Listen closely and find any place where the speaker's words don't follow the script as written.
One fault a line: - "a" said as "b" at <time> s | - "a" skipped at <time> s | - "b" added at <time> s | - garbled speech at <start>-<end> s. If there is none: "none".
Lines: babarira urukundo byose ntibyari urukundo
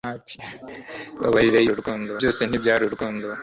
none